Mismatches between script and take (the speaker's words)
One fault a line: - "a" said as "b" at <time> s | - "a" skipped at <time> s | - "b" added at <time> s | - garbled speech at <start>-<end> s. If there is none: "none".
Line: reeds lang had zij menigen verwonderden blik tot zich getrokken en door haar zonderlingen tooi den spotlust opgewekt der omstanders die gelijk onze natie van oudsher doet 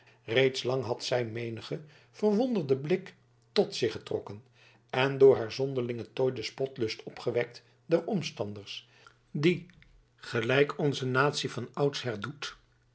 none